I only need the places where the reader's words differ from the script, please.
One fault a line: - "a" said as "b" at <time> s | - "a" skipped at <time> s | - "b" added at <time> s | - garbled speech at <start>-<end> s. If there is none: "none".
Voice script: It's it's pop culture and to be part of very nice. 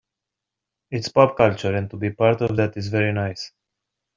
- "it's" skipped at 1.1 s
- "that is" added at 2.6 s